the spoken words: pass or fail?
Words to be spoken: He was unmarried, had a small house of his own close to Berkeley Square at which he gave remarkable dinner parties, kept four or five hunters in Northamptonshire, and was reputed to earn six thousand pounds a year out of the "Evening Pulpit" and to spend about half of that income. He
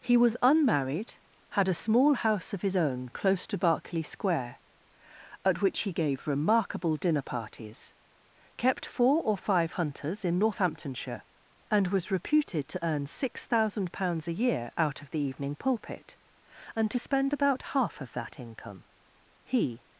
pass